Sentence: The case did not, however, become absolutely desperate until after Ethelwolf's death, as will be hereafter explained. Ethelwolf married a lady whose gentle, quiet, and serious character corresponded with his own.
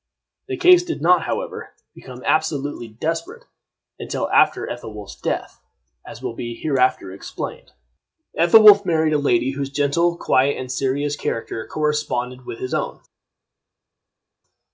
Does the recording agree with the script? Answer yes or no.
yes